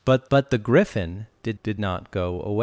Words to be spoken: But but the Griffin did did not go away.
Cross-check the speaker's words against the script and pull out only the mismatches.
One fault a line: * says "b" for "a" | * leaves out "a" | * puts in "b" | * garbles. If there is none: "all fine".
all fine